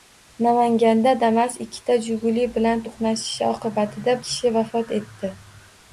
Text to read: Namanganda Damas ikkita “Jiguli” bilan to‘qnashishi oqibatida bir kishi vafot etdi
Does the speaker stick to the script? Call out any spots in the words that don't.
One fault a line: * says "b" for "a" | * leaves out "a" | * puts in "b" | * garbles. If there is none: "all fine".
* leaves out "bir"